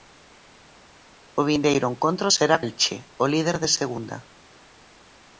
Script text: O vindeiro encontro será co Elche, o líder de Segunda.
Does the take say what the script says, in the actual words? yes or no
no